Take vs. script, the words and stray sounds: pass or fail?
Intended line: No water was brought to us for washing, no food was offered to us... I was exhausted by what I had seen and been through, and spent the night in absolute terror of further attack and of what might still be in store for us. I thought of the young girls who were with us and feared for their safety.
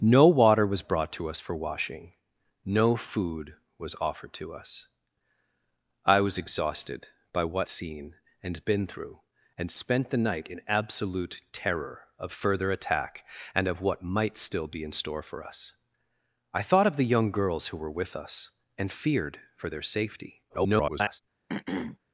fail